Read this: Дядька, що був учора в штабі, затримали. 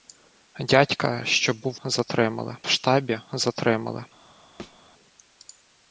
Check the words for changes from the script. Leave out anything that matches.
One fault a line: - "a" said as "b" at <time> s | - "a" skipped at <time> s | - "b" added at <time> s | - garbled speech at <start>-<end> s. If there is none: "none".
- "учора" said as "затримали" at 1.8 s